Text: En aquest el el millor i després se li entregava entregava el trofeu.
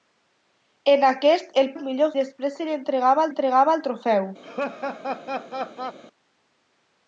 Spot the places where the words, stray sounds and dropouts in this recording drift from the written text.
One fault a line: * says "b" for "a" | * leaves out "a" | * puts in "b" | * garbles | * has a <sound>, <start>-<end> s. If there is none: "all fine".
* has a laugh, 4.4-6.0 s